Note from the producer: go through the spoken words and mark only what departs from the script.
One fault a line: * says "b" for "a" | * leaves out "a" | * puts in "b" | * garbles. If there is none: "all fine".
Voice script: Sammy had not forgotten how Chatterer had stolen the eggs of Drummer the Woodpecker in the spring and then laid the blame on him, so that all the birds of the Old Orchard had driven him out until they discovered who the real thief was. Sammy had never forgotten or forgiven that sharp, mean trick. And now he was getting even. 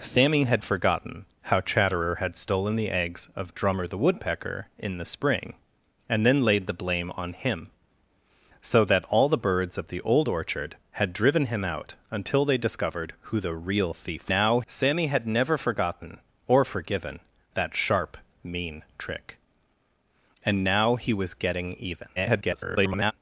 * leaves out "not"
* says "now" for "was"
* garbles